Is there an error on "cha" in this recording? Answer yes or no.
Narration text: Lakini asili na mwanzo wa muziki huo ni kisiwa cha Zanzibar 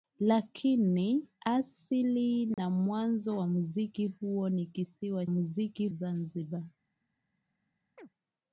yes